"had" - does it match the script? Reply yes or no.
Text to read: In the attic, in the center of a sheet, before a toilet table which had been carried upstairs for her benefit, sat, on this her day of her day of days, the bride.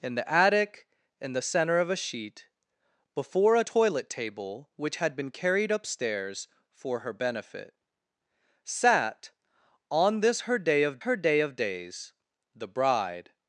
yes